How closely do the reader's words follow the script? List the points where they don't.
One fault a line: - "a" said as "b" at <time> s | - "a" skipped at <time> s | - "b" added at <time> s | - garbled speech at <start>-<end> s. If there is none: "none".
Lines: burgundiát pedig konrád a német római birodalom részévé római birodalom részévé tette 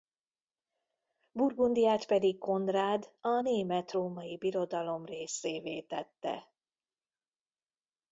- "római birodalom részévé" skipped at 5.8 s